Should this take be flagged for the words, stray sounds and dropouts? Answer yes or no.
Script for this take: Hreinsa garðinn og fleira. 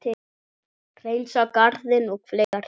yes